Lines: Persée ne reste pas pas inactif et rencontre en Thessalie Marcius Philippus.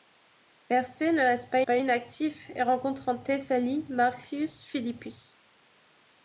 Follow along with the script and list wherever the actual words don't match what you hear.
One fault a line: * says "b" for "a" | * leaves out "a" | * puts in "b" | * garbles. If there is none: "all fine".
all fine